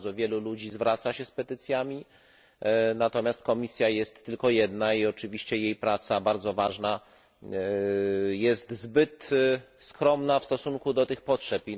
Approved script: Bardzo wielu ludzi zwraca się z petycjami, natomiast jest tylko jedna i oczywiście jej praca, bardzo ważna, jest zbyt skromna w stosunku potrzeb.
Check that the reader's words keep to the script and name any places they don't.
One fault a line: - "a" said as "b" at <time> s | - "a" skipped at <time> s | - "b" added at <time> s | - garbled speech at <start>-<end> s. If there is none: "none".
- "komisja" added at 3.4 s
- "do tych" added at 10.9 s